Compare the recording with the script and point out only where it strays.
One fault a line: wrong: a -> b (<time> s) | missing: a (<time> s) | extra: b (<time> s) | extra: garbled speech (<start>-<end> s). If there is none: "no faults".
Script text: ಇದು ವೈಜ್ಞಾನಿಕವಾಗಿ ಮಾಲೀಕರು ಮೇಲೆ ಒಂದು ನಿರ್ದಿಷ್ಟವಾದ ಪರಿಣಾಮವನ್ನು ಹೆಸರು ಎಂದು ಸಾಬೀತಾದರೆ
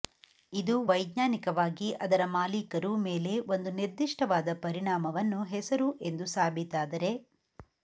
extra: ಅದರ (2.0 s)